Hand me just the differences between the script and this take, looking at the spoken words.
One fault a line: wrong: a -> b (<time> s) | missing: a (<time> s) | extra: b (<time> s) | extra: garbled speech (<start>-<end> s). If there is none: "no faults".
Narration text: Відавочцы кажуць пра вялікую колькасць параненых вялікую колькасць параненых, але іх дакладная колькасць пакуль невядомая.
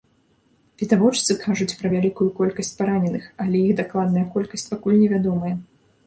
missing: вялікую колькасць параненых (3.3 s)